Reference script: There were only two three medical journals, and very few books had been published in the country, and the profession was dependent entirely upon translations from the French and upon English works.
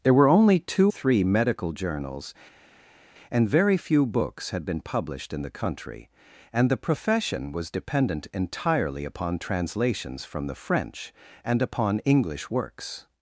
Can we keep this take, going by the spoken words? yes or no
yes